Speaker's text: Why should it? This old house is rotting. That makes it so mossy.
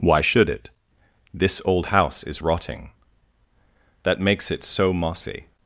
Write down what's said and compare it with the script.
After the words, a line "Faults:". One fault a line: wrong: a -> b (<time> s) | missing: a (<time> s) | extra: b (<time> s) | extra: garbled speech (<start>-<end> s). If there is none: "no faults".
Why should it? This old house is rotting. That makes it so mossy.
Faults:
no faults